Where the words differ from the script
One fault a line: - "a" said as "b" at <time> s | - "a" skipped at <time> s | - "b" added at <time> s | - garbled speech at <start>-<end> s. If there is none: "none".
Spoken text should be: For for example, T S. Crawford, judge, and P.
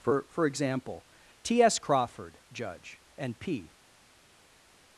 none